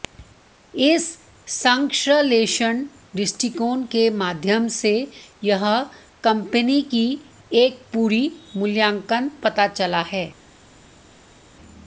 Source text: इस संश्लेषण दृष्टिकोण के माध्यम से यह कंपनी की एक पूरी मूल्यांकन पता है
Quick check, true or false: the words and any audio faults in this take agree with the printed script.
false